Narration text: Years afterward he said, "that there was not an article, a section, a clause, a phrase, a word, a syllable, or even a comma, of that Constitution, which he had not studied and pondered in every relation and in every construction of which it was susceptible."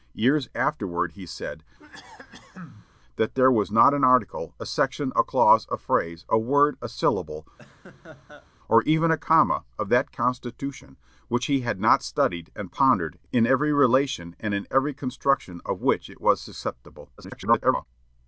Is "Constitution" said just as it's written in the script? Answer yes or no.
yes